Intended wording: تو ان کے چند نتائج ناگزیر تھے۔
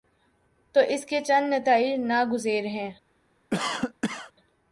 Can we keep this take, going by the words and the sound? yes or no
no